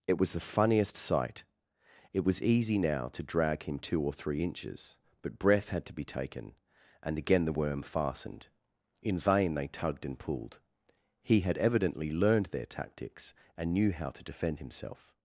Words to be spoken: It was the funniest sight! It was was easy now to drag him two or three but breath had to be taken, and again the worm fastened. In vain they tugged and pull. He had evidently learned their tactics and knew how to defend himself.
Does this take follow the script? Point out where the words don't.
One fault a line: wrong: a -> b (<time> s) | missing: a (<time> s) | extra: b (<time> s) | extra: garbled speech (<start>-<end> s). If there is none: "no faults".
missing: was (2.4 s)
extra: inches (4.4 s)
wrong: pull -> pulled (10.2 s)